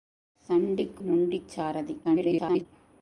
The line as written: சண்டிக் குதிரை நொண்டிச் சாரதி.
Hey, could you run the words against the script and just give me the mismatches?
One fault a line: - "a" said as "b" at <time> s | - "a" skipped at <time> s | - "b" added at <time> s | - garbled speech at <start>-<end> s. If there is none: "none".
- "குதிரை" skipped at 1.0 s
- garbled speech at 2.0-2.7 s